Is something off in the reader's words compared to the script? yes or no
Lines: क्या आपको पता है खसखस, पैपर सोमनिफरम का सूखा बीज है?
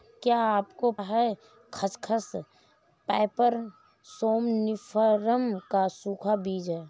yes